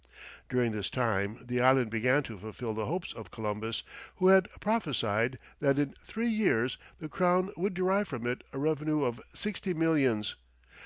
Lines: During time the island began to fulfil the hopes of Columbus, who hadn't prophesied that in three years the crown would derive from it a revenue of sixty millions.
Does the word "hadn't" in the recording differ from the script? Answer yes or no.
yes